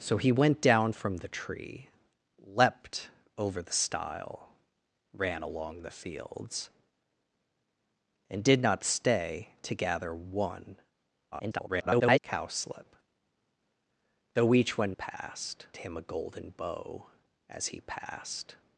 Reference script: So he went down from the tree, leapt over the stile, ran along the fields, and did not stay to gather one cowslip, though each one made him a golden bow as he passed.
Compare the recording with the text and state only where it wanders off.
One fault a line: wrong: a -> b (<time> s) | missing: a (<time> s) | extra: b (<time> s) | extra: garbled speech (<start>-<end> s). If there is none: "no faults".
extra: garbled speech (11.3-12.2 s)
wrong: made -> passed (14.9 s)